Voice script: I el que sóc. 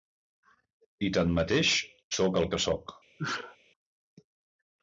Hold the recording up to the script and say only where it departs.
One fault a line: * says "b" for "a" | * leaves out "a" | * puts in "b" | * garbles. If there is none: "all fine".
* puts in "tanmateix sóc"